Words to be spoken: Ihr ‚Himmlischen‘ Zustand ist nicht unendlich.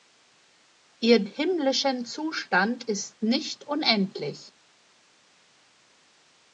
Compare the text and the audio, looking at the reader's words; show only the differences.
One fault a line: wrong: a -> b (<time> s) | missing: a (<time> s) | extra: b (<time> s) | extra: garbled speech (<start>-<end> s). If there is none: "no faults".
no faults